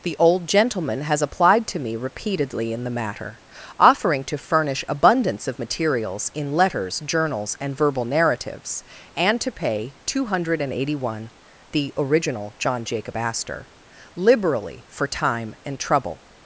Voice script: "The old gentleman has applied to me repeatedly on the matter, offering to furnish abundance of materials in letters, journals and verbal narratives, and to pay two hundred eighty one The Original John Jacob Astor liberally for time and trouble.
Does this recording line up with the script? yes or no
no